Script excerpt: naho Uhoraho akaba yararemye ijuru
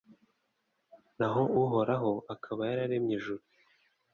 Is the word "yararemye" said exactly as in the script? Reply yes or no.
yes